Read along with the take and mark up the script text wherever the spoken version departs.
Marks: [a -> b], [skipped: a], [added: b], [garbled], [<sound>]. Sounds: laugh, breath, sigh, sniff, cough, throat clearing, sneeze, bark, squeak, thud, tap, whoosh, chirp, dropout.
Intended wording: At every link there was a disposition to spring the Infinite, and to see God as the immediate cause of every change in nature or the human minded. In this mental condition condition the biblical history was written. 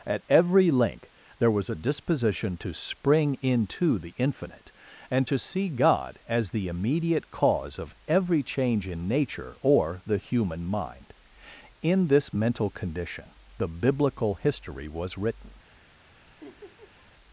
At every link there was a disposition to spring [added: into] the Infinite, and to see God as the immediate cause of every change in nature or the human [minded. -> mind] In this mental condition [skipped: condition] the biblical history was written. [laugh]